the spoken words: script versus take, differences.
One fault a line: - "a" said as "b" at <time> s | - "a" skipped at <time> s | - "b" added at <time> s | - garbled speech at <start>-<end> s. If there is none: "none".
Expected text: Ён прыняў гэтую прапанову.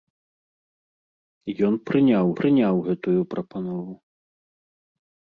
- "прыняў" added at 2.4 s